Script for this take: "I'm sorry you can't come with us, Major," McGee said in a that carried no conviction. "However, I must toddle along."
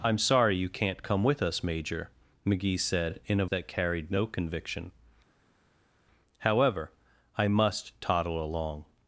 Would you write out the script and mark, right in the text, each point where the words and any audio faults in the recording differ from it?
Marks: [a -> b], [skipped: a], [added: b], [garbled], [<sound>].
"I'm sorry you can't come with us, Major," McGee said in a that carried no conviction. "However, I must toddle along."